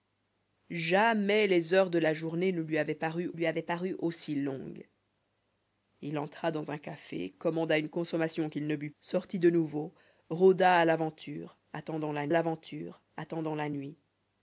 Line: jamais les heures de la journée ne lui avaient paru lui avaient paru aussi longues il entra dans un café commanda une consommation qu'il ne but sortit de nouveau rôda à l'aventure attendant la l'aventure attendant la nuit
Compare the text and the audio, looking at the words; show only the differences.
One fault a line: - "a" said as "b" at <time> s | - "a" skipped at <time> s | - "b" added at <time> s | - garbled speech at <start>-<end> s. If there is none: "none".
none